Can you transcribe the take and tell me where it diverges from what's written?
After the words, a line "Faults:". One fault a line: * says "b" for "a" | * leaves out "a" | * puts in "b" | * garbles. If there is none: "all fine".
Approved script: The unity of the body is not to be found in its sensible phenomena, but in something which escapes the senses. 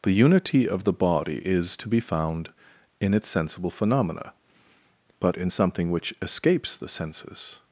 The unity of the body is to be found in its sensible phenomena, but in something which escapes the senses.
Faults:
* leaves out "not"